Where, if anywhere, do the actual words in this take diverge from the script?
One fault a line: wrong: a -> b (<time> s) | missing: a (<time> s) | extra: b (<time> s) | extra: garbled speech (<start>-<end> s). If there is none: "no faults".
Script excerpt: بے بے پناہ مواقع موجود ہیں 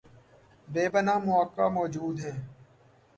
missing: بے (0.8 s)